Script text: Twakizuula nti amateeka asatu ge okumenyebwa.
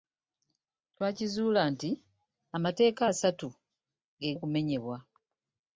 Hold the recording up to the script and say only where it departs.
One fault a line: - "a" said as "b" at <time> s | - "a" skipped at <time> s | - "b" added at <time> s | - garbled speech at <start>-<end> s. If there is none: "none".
none